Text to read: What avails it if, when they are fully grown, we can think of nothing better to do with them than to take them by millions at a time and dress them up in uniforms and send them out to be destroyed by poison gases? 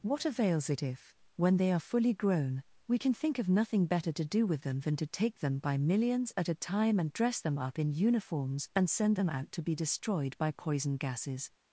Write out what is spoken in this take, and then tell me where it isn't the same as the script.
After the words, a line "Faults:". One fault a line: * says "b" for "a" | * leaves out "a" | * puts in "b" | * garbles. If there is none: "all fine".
What avails it if, when they are fully grown, we can think of nothing better to do with them than to take them by millions at a time and dress them up in uniforms and send them out to be destroyed by poison gases?
Faults:
all fine